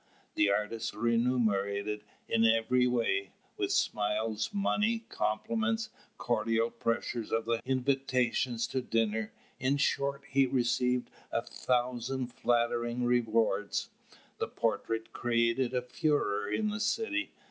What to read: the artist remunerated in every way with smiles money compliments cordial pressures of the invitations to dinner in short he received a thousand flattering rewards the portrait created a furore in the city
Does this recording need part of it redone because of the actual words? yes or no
no